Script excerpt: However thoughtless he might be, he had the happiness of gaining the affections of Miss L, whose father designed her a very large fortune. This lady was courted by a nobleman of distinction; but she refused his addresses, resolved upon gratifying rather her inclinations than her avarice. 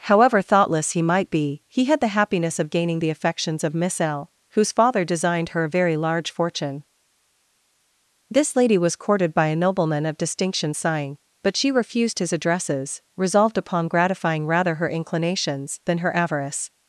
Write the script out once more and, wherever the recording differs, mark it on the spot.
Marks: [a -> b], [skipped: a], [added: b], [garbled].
However thoughtless he might be, he had the happiness of gaining the affections of Miss L, whose father designed her a very large fortune. This lady was courted by a nobleman of distinction; [added: sighing] but she refused his addresses, resolved upon gratifying rather her inclinations than her avarice.